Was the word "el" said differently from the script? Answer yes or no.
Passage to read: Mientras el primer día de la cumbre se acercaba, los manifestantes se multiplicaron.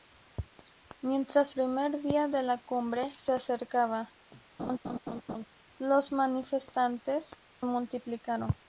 yes